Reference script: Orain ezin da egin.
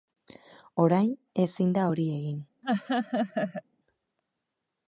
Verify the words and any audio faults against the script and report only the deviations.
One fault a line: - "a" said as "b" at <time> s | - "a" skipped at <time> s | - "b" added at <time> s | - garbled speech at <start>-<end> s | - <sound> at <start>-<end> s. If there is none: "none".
- "hori" added at 1.9 s
- laugh at 2.6-3.6 s